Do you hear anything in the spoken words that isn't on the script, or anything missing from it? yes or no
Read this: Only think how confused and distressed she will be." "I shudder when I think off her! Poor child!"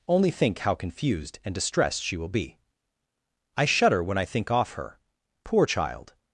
no